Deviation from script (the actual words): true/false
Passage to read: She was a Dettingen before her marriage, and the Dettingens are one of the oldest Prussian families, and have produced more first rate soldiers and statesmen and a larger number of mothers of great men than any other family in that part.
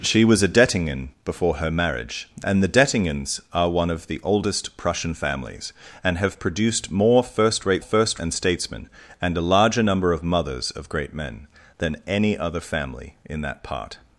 true